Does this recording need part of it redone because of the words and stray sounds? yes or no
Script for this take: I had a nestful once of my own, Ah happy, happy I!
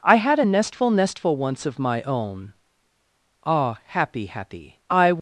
yes